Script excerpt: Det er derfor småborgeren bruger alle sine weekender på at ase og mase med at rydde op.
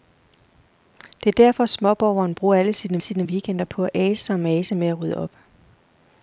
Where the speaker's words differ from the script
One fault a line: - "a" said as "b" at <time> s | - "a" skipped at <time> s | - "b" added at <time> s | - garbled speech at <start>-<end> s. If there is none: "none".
- "sine" added at 3.0 s